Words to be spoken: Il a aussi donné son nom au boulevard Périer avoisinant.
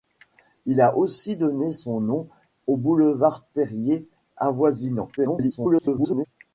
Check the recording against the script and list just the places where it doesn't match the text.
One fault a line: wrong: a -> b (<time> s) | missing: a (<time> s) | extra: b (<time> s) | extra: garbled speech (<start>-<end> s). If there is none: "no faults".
extra: garbled speech (5.2-6.3 s)